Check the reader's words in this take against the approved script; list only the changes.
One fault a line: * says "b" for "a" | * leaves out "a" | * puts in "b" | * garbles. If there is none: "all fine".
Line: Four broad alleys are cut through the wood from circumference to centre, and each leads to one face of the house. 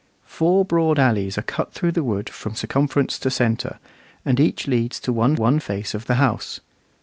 * puts in "one"